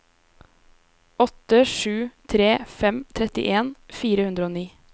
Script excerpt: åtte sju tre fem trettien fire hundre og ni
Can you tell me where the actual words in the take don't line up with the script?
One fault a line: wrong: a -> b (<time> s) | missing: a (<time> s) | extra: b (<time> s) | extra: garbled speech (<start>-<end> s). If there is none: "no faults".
no faults